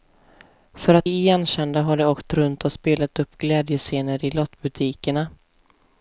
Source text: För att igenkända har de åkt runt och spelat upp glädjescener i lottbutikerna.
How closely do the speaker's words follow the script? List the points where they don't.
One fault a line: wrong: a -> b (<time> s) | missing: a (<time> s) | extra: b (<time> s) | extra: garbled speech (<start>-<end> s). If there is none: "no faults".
no faults